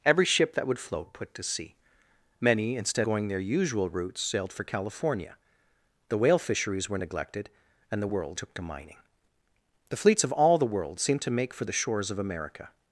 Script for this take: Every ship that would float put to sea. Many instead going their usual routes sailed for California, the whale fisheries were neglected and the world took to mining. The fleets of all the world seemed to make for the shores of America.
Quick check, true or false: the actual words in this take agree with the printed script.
true